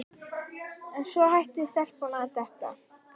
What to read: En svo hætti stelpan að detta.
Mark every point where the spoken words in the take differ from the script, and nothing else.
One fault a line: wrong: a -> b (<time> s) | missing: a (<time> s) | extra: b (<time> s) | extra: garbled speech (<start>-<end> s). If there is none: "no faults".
no faults